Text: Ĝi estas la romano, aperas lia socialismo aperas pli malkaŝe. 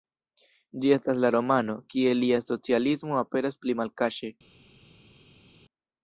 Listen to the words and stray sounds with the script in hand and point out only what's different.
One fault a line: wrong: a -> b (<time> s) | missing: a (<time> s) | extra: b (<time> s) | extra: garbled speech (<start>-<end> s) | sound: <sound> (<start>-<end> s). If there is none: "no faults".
wrong: aperas -> kie (1.9 s)